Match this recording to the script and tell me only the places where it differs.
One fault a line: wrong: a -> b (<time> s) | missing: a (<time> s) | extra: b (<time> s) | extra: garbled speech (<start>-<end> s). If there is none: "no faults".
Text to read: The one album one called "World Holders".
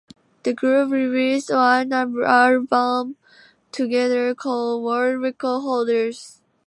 extra: group released (0.5 s)
wrong: one -> together (3.7 s)
extra: Record (5.2 s)